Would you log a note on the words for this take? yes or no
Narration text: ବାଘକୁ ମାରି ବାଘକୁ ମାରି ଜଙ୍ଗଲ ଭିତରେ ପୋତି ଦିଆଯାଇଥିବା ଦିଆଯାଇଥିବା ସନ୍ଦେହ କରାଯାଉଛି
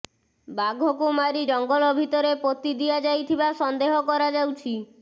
yes